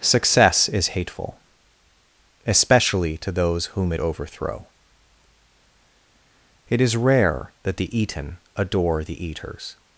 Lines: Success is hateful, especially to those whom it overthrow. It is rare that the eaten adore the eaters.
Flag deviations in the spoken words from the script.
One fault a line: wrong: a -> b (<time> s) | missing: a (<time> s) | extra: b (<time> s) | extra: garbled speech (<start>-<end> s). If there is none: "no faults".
no faults